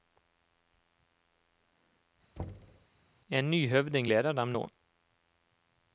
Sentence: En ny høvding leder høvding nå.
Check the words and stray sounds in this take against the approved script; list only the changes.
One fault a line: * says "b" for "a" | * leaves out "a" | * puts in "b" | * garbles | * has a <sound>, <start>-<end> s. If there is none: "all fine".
* has a thud, 2.4-2.9 s
* says "dem" for "høvding"